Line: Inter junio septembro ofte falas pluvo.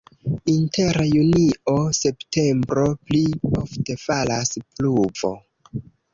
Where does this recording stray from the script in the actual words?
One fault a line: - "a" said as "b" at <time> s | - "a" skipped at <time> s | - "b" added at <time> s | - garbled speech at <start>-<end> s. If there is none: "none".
- "pli" added at 3.1 s